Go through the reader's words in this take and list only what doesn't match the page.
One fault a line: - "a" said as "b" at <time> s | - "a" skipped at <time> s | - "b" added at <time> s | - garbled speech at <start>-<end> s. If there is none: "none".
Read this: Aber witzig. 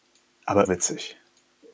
none